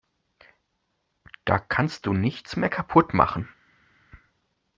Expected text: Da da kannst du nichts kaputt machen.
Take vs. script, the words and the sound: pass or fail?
fail